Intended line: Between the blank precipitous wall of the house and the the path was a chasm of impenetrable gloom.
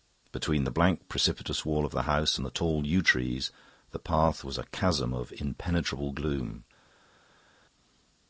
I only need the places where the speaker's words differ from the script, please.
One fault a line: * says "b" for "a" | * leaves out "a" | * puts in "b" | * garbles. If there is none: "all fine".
* puts in "tall yew trees"